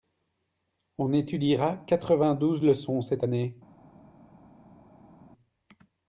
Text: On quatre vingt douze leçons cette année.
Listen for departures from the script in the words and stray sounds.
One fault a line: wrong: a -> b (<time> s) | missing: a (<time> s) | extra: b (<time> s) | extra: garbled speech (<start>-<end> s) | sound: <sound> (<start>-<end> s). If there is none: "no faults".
extra: étudiera (1.1 s)